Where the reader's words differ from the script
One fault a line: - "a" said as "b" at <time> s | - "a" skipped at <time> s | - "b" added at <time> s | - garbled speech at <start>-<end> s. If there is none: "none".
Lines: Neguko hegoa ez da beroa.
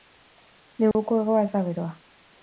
none